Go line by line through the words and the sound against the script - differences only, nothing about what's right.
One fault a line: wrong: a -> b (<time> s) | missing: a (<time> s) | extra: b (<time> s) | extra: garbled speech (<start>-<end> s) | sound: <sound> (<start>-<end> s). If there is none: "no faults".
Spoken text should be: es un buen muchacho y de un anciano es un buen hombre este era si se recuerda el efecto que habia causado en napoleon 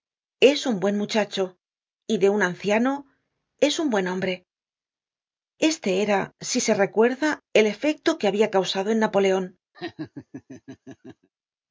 sound: laugh (9.7-11.3 s)